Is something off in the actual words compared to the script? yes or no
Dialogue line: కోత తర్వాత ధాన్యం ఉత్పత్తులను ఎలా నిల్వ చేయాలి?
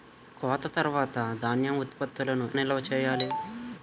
yes